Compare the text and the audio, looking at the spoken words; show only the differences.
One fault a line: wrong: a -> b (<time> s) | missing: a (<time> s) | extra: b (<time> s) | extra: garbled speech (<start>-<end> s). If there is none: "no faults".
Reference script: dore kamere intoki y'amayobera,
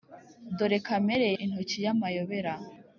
no faults